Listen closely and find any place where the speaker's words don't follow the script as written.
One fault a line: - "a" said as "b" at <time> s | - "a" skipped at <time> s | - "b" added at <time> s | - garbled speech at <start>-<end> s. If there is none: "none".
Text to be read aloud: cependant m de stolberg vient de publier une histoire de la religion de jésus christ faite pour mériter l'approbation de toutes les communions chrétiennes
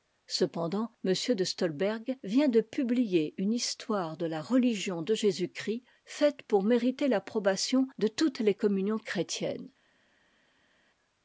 none